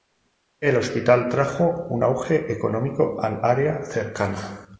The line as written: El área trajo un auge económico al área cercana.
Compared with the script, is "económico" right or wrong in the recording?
right